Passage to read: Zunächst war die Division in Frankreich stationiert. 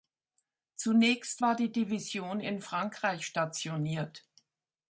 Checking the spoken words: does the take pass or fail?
pass